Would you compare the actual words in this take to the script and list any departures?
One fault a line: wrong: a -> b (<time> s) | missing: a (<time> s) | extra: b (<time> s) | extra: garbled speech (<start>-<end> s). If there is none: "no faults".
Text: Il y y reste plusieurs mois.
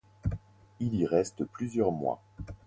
missing: y (1.1 s)